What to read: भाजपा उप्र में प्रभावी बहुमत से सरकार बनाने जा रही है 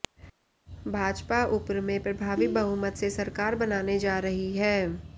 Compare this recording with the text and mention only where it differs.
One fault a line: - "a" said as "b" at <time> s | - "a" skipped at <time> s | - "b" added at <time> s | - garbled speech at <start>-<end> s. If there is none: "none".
none